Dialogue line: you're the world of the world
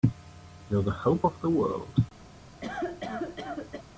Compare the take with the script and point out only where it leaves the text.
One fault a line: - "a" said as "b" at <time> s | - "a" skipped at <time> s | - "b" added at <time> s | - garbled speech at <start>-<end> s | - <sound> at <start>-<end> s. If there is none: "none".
- "world" said as "hope" at 0.9 s
- cough at 2.6-3.8 s